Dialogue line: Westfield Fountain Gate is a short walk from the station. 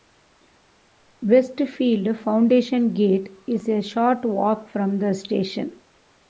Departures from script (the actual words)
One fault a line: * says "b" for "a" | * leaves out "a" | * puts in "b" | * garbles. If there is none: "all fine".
all fine